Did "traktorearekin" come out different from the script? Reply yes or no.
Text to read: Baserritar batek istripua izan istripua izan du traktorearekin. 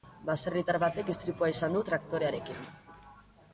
no